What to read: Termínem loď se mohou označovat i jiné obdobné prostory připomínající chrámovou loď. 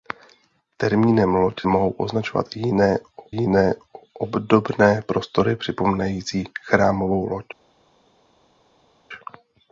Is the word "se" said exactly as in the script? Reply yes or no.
no